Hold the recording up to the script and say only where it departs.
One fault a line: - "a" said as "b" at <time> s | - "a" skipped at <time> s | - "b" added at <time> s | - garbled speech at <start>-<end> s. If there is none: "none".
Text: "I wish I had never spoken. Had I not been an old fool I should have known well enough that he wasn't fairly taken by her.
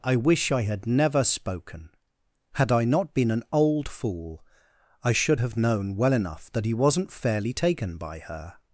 none